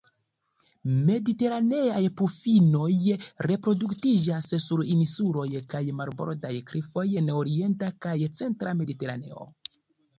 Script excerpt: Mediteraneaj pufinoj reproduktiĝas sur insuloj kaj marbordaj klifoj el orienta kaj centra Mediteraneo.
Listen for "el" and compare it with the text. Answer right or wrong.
wrong